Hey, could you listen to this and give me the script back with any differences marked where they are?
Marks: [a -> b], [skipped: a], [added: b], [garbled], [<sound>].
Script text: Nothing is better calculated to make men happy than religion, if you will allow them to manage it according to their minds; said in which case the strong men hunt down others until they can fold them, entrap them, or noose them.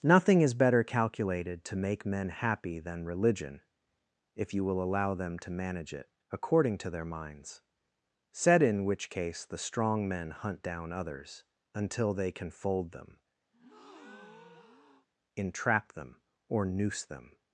Nothing is better calculated to make men happy than religion, if you will allow them to manage it according to their minds; said in which case the strong men hunt down others until they can fold them, [breath] entrap them, or noose them.